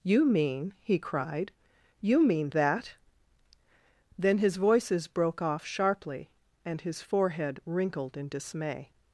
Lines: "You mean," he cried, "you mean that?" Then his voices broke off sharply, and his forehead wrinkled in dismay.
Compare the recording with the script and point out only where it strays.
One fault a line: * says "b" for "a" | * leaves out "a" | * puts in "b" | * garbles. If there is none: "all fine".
all fine